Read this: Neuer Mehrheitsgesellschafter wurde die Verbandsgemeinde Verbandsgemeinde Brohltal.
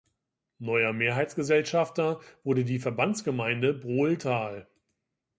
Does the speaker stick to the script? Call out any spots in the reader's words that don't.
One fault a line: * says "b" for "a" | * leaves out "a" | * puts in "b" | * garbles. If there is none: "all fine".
* leaves out "Verbandsgemeinde"